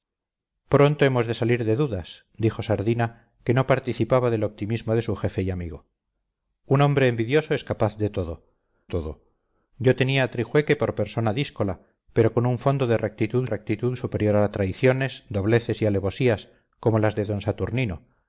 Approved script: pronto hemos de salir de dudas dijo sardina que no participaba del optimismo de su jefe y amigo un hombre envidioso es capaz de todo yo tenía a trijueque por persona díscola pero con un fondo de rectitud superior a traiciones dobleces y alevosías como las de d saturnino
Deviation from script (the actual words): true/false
true